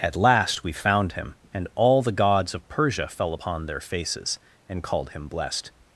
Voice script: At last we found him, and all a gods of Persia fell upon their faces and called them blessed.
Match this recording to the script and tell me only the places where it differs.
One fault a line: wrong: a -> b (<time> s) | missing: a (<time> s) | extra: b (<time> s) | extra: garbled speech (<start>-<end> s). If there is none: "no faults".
wrong: a -> the (2.0 s)
wrong: them -> him (5.1 s)